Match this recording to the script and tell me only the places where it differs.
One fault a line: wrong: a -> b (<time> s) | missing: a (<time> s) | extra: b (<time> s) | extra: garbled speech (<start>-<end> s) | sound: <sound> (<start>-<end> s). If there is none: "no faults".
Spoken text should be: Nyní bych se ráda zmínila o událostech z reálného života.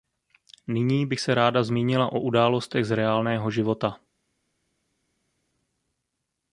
no faults